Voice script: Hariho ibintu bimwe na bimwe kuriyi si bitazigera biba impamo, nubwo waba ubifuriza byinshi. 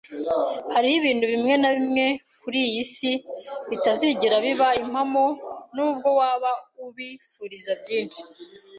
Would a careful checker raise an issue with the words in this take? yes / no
no